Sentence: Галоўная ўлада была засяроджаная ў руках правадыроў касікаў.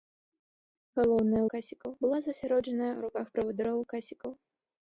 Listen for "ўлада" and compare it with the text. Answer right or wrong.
wrong